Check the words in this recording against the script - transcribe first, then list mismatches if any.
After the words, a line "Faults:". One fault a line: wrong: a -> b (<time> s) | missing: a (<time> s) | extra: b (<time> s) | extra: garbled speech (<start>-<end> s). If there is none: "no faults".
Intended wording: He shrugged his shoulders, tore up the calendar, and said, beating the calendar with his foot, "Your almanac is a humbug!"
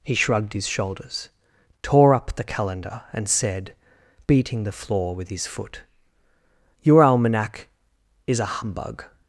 He shrugged his shoulders, tore up the calendar, and said, beating the floor with his foot, "Your almanac is a humbug!"
Faults:
wrong: calendar -> floor (4.7 s)